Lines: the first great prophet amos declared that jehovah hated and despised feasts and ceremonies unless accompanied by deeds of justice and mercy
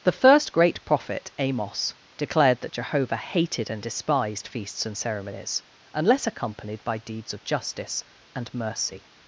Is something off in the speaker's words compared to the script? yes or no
no